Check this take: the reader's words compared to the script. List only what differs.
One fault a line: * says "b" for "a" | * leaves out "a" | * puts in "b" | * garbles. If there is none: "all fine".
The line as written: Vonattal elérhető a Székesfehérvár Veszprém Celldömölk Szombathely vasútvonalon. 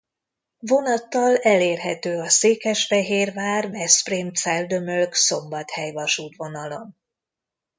all fine